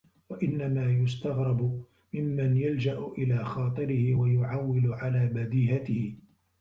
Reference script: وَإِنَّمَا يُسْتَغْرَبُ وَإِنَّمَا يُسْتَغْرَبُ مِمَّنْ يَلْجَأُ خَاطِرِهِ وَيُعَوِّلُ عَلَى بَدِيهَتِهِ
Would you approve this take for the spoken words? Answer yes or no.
no